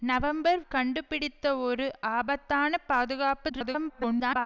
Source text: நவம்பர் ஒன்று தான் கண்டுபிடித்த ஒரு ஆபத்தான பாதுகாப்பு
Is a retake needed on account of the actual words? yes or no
yes